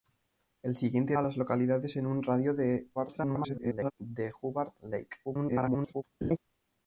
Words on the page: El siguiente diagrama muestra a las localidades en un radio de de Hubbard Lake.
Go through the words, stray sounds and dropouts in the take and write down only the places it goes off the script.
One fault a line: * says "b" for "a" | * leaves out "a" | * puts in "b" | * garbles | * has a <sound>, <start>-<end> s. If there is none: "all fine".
* leaves out "diagrama muestra"
* garbles
* garbles
* has a laugh, 6.2-6.4 s